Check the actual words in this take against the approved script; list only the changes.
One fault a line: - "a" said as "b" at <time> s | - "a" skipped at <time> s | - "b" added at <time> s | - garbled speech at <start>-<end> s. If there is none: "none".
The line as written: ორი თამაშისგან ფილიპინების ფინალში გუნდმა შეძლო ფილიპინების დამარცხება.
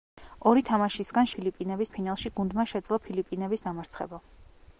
none